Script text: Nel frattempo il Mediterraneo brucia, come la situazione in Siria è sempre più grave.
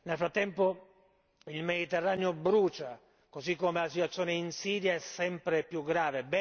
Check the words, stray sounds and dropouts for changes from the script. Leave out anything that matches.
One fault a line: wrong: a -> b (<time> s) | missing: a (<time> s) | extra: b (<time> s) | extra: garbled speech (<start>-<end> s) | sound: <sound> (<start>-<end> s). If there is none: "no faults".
extra: così (3.3 s)